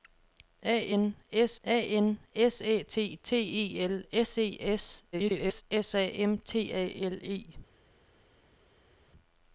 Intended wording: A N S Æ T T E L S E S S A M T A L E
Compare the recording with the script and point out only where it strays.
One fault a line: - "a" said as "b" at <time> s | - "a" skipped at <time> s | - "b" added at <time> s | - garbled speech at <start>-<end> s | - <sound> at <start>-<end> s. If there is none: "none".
- "a N S" added at 1.6 s
- garbled speech at 5.1-5.6 s